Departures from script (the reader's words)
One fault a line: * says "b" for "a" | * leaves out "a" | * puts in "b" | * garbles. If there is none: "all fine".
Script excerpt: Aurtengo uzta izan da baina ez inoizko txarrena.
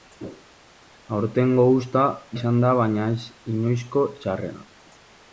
all fine